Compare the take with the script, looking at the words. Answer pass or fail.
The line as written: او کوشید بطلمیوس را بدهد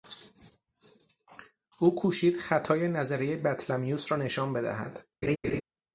fail